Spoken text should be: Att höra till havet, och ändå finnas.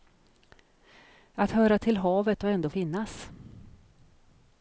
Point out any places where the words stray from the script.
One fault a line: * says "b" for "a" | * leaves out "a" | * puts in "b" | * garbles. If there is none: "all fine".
all fine